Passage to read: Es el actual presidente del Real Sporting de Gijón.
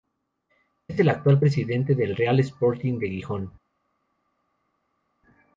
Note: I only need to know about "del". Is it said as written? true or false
true